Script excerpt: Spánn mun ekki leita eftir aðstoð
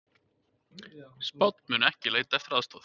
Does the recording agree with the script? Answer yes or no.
yes